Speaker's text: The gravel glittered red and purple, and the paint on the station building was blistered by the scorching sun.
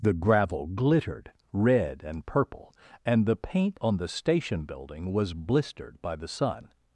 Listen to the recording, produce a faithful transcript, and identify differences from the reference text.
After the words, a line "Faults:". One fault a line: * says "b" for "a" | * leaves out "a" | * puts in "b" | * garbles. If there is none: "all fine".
The gravel glittered red and purple, and the paint on the station building was blistered by the sun.
Faults:
* leaves out "scorching"